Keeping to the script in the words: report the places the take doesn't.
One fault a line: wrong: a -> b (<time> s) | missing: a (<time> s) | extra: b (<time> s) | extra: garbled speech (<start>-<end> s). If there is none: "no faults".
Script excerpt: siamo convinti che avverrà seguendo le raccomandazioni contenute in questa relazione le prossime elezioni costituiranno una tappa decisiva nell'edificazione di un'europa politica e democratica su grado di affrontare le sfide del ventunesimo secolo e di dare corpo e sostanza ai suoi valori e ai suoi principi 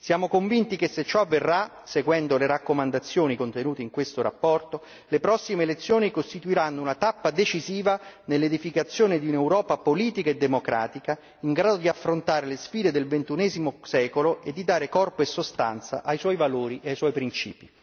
extra: se ciò (0.9 s)
wrong: su -> in (11.4 s)